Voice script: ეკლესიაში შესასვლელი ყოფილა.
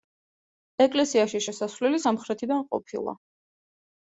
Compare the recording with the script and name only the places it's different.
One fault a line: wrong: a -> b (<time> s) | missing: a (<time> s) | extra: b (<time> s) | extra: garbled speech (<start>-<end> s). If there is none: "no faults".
extra: სამხრეთიდან (2.0 s)